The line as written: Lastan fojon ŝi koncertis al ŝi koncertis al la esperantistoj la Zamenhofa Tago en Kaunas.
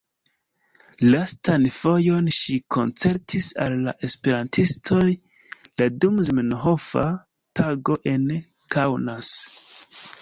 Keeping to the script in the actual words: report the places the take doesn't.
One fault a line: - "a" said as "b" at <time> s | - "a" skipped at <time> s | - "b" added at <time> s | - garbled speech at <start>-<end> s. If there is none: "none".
- "ŝi koncertis al" skipped at 3.7 s
- "dum" added at 6.1 s